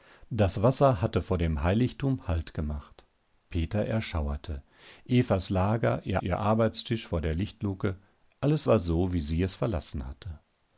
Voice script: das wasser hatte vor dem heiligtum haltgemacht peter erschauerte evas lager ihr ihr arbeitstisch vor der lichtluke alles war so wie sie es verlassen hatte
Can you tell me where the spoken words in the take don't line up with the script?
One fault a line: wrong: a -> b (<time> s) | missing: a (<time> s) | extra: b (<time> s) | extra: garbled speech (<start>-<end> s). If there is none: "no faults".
no faults